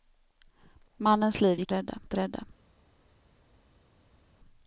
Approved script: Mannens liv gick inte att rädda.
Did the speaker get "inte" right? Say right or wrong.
wrong